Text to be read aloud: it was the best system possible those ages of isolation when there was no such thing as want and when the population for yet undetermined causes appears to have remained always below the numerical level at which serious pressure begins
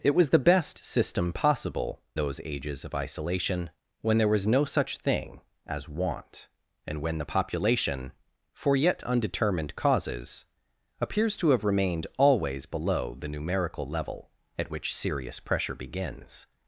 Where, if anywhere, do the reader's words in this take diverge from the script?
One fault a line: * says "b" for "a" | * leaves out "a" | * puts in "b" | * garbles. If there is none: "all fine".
all fine